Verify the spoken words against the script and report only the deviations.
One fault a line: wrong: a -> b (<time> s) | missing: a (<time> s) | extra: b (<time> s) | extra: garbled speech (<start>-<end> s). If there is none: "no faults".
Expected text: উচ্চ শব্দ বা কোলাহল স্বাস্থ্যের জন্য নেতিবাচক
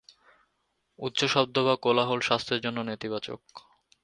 no faults